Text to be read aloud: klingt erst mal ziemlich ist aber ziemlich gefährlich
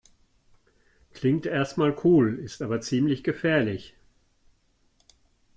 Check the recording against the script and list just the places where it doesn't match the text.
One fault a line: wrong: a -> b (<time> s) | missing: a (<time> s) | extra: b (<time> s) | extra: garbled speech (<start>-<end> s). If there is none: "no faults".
wrong: ziemlich -> cool (2.0 s)